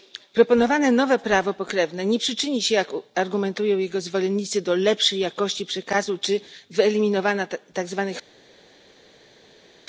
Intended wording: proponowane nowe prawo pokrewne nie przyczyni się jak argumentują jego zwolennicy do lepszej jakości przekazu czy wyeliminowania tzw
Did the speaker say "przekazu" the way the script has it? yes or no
yes